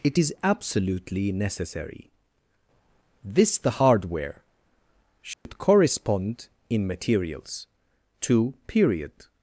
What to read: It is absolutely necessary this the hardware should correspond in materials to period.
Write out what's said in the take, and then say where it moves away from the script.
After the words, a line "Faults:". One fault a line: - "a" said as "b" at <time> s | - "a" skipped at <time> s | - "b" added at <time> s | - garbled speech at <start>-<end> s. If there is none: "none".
It is absolutely necessary this the hardware should correspond in materials to period.
Faults:
none